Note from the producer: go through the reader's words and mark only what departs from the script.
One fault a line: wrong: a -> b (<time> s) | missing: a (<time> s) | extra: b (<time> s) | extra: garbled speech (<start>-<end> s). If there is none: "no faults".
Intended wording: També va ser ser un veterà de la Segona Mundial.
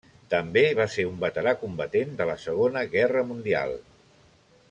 missing: ser (1.0 s)
extra: combatent (1.6 s)
extra: Guerra (3.0 s)